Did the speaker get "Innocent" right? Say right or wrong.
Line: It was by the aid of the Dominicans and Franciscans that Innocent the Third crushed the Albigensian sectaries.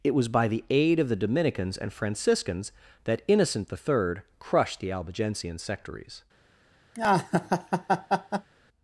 right